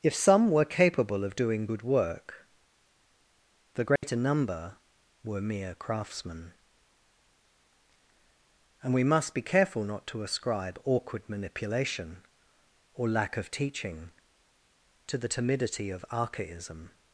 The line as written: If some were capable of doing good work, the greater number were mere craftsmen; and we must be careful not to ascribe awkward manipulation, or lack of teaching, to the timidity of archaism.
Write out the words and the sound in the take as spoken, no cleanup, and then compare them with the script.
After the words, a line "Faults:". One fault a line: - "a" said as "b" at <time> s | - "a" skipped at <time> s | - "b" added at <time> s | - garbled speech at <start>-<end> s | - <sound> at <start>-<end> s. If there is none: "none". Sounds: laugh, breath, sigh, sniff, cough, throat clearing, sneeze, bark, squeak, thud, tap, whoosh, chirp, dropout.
If some were capable of doing good work, the greater number were mere craftsmen; and we must be careful not to ascribe awkward manipulation, or lack of teaching, to the timidity of archaism.
Faults:
- dropout at 4.0-4.0 s